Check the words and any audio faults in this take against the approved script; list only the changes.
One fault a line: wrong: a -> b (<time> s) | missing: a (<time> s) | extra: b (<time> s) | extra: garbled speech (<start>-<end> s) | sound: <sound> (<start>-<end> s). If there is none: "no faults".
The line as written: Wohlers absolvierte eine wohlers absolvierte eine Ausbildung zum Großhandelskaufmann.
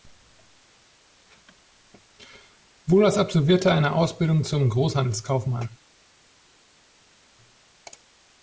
missing: wohlers absolvierte eine (3.9 s)